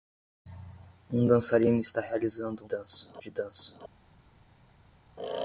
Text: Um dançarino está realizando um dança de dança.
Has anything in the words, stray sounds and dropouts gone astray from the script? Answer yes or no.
no